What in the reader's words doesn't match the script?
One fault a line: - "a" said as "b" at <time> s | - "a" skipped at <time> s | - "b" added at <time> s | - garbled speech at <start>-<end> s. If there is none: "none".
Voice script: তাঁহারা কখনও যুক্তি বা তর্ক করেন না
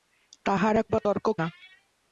- "কখনও যুক্তি" skipped at 0.8 s
- "করেন" skipped at 1.3 s